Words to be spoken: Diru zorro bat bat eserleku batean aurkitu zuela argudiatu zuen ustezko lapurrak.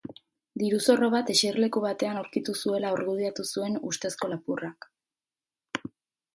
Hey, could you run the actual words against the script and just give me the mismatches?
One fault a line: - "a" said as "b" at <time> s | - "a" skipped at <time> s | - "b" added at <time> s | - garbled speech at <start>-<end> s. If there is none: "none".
- "bat" skipped at 1.3 s